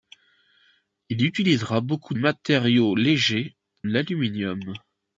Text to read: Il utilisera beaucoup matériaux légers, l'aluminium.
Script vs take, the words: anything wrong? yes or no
no